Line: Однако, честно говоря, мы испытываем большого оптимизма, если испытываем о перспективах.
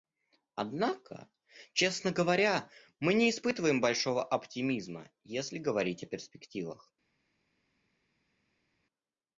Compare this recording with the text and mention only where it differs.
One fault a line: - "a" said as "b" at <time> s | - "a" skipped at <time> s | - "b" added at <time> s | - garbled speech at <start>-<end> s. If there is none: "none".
- "не" added at 3.1 s
- "испытываем" said as "говорить" at 5.6 s